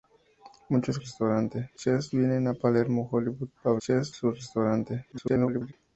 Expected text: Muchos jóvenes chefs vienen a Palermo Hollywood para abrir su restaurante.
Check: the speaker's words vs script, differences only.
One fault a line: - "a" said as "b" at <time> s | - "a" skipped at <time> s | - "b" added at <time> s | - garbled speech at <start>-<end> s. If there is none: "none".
- "jóvenes" said as "restaurante" at 0.9 s
- "abrir" said as "chefs" at 3.8 s
- garbled speech at 5.1-5.7 s